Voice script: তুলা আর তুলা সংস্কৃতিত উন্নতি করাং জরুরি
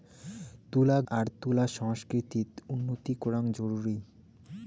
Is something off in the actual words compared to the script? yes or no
no